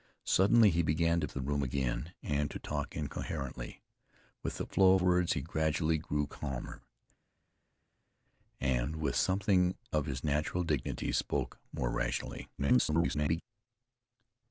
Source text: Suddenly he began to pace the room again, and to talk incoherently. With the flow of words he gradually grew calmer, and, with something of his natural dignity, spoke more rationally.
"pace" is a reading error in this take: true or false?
true